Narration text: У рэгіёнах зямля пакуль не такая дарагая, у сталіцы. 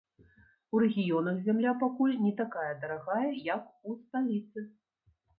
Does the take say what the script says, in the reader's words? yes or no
no